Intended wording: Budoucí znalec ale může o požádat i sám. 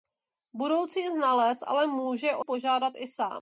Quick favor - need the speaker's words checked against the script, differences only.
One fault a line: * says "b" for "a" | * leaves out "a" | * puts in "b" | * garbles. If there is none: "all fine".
all fine